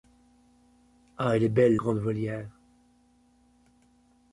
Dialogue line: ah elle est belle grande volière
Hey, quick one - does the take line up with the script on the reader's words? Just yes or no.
yes